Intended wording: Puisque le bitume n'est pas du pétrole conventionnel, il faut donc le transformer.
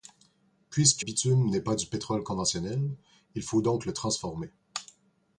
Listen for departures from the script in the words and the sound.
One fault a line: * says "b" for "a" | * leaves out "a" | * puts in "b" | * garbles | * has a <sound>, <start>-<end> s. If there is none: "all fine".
* leaves out "le"